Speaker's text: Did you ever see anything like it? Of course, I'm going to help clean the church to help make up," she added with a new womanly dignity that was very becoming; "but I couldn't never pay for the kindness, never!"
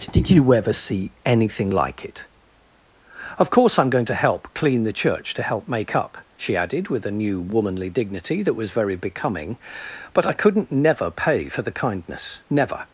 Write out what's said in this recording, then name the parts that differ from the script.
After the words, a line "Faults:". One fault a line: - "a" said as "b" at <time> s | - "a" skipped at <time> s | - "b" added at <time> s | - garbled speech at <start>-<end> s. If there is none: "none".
Did you ever see anything like it? Of course, I'm going to help clean the church to help make up," she added with a new womanly dignity that was very becoming; "but I couldn't never pay for the kindness, never!"
Faults:
none